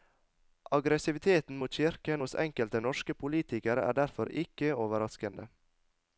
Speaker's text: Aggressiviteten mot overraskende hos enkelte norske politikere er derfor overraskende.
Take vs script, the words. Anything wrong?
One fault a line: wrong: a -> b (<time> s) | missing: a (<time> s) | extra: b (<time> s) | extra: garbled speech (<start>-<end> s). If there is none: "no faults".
wrong: overraskende -> kirken (1.8 s)
extra: ikke (4.4 s)